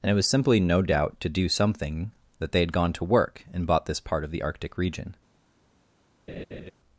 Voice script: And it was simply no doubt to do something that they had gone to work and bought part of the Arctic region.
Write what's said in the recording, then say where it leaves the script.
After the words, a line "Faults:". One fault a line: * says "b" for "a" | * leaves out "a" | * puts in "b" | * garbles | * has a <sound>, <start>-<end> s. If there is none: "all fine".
And it was simply no doubt to do something that they had gone to work and bought this part of the Arctic region.
Faults:
* puts in "this"
* has a laugh, 6.3-6.7 s